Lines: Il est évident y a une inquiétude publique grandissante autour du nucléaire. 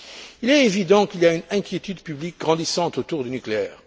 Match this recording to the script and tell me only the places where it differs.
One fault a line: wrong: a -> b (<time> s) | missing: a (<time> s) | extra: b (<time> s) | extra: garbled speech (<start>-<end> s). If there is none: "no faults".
extra: qu'il (1.1 s)